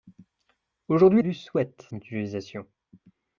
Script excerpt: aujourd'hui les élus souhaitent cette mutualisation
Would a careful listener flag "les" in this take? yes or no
yes